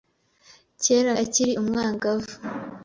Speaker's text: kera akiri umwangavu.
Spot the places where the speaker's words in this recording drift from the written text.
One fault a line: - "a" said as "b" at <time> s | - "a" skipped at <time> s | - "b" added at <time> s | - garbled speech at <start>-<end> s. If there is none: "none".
none